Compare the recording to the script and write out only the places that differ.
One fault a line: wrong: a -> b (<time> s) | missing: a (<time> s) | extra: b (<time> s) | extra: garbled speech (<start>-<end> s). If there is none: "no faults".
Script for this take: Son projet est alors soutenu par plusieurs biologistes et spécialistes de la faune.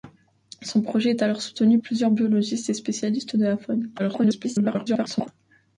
missing: par (1.8 s)
extra: garbled speech (4.0-5.3 s)